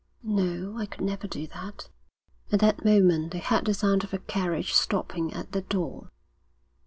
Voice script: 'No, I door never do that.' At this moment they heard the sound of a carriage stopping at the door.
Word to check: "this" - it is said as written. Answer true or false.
false